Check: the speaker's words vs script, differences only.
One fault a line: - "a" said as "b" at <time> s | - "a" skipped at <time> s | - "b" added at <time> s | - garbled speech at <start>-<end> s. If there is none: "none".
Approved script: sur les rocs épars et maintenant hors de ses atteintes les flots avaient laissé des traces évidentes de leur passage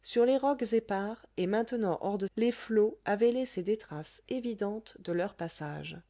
- "ses atteintes" skipped at 2.3 s